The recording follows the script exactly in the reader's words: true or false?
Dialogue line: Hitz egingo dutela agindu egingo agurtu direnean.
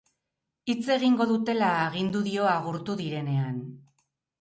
false